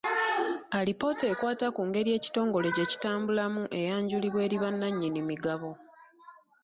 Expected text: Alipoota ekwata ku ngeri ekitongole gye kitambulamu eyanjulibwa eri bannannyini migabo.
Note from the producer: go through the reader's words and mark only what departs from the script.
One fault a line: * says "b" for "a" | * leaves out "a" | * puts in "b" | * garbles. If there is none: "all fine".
all fine